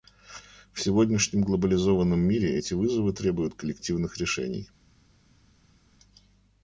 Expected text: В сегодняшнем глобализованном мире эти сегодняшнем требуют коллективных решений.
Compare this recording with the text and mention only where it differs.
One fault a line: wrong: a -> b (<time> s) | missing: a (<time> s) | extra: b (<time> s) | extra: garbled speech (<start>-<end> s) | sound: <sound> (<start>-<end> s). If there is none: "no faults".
wrong: сегодняшнем -> вызовы (2.7 s)